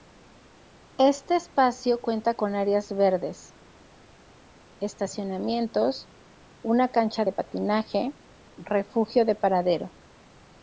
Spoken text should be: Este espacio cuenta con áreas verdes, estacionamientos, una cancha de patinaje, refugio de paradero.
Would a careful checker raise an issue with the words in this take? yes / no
no